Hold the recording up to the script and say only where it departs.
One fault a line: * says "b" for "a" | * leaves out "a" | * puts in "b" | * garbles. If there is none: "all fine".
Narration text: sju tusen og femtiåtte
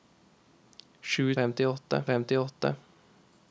* says "femtiåtte" for "tusen"